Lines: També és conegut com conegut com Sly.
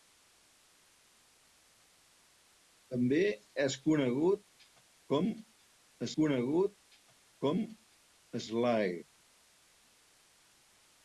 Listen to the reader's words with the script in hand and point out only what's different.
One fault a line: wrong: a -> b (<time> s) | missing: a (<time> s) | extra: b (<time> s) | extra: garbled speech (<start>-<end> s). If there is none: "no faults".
no faults